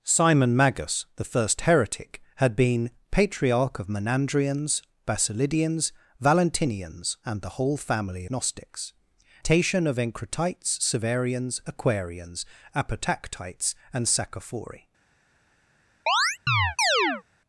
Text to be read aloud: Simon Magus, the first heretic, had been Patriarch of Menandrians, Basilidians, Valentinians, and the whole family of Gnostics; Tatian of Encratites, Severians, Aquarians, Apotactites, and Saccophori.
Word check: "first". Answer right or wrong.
right